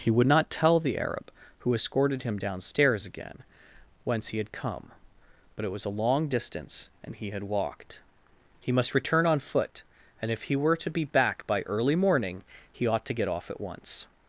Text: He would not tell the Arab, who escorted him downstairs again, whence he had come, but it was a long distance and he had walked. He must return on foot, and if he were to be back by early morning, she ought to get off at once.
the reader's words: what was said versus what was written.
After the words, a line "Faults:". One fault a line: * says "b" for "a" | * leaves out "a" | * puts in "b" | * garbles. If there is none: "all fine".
He would not tell the Arab, who escorted him downstairs again, whence he had come, but it was a long distance and he had walked. He must return on foot, and if he were to be back by early morning, he ought to get off at once.
Faults:
* says "he" for "she"